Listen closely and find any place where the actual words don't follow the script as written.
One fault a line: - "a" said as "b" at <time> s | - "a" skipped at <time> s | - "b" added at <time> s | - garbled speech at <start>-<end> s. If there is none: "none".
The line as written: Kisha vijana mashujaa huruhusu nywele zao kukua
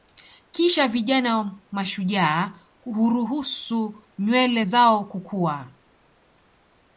none